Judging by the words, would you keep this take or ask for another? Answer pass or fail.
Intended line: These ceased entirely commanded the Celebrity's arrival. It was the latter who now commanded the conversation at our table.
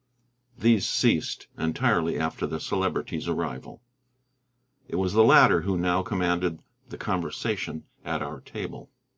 fail